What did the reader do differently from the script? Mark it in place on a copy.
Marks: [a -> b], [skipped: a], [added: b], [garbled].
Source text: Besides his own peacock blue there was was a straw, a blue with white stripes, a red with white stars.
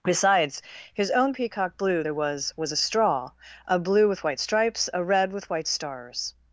Besides his own peacock blue there was was a straw, a blue with white stripes, a red with white stars.